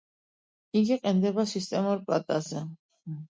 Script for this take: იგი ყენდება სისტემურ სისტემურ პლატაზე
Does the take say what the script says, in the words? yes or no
no